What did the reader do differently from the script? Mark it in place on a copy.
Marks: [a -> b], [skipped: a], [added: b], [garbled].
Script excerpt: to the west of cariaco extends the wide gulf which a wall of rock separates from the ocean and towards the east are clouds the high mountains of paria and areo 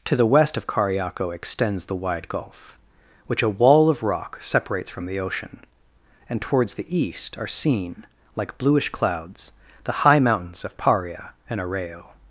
to the west of cariaco extends the wide gulf which a wall of rock separates from the ocean and towards the east are [added: seen like bluish] clouds the high mountains of paria and areo